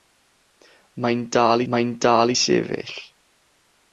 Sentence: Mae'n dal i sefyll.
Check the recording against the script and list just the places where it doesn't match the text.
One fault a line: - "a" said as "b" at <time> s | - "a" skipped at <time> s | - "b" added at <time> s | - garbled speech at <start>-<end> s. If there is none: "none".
- "mae'n dal" added at 1.7 s